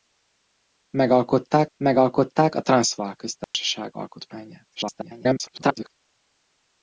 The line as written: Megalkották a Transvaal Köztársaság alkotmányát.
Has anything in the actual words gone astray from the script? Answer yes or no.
yes